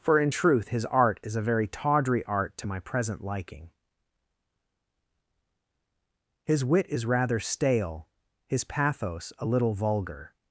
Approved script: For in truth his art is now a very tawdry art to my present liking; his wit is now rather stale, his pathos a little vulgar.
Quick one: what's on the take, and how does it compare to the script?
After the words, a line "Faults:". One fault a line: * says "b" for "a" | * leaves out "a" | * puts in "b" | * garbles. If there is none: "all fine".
For in truth his art is a very tawdry art to my present liking; his wit is rather stale, his pathos a little vulgar.
Faults:
* leaves out "now"
* leaves out "now"